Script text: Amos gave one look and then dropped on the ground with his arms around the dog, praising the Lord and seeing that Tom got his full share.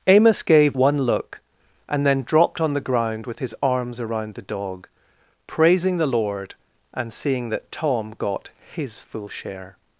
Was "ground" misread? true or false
false